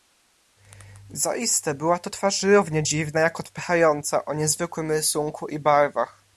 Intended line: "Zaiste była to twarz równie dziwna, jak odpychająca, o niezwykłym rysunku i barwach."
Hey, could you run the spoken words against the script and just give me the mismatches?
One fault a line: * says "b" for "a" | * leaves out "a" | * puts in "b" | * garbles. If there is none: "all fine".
all fine